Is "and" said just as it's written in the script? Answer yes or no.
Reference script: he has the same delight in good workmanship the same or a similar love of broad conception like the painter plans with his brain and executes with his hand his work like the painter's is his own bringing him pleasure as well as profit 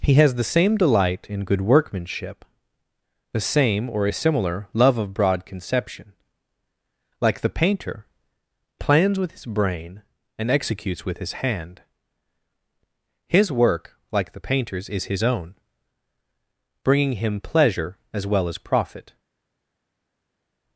yes